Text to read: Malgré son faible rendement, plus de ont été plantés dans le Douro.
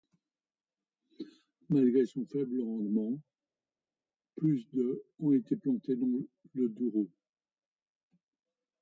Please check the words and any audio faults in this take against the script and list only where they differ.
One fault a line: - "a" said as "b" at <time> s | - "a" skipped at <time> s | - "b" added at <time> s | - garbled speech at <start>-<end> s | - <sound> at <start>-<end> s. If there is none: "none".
none